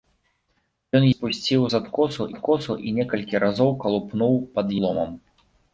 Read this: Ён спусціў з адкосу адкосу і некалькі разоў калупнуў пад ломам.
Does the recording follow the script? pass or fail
pass